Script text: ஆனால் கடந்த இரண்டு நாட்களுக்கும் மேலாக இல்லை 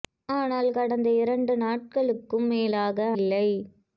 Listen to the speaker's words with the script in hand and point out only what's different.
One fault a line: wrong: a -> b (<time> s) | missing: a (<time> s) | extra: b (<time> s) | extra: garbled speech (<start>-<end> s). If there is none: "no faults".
no faults